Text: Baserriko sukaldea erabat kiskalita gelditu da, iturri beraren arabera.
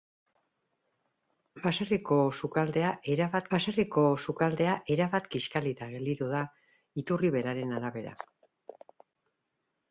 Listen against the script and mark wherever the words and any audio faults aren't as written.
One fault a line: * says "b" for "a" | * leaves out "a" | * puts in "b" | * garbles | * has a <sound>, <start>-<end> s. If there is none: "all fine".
* puts in "baserriko sukaldea erabat"